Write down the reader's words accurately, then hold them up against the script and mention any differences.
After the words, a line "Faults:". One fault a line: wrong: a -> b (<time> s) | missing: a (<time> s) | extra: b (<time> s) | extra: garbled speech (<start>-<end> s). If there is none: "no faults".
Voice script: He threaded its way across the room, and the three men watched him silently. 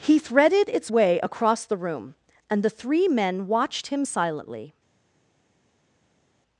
He threaded its way across the room, and the three men watched him silently.
Faults:
no faults